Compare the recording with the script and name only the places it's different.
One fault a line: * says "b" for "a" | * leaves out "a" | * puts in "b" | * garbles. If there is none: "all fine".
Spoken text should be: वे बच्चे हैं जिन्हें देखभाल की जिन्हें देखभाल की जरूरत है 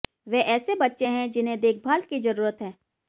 * puts in "ऐसे"
* leaves out "जिन्हें देखभाल की"